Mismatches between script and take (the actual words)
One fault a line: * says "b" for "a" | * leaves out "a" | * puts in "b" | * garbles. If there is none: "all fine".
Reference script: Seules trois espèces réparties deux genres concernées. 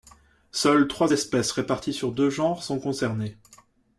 * puts in "sur"
* puts in "sont"